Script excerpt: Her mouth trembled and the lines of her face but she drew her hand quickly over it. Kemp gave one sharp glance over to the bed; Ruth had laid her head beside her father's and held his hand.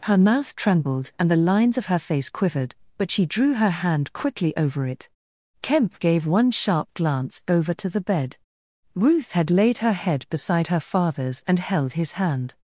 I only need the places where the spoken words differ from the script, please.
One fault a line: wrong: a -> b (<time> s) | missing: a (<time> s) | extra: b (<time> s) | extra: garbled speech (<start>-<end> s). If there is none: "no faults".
extra: quivered (2.3 s)